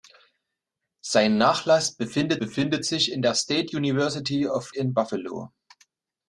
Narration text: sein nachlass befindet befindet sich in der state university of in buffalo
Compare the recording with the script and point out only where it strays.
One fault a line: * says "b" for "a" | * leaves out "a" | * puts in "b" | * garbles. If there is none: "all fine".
all fine